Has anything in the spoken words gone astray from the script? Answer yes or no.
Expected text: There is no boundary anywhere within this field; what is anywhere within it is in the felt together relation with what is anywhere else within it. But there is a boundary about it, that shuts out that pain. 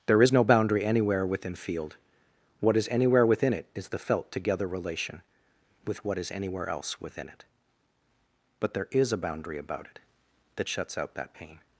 yes